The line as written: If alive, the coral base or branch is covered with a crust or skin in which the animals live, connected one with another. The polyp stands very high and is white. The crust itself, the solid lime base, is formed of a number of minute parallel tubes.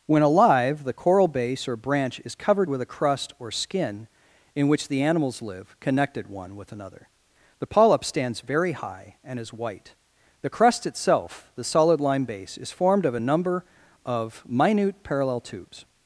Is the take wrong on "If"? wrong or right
wrong